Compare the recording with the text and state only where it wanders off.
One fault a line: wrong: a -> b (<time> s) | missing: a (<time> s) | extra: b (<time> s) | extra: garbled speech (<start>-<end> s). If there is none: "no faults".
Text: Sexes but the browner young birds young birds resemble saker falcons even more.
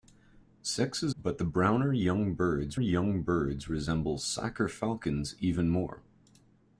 no faults